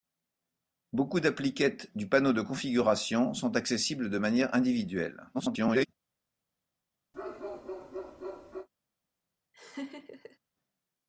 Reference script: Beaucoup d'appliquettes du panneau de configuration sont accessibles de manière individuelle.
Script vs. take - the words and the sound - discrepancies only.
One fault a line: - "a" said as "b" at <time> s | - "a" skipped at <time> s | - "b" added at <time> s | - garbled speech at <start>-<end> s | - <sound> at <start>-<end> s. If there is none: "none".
- garbled speech at 5.3-5.9 s
- bark at 7.1-8.7 s
- laugh at 9.5-10.4 s